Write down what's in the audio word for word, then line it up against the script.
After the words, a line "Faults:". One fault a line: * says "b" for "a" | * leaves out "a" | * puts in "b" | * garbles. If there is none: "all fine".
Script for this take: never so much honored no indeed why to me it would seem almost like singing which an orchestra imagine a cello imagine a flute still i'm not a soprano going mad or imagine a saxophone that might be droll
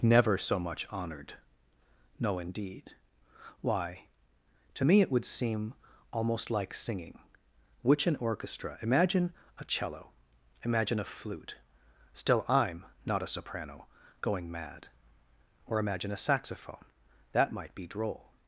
never so much honored no indeed why to me it would seem almost like singing which an orchestra imagine a cello imagine a flute still i'm not a soprano going mad or imagine a saxophone that might be droll
Faults:
all fine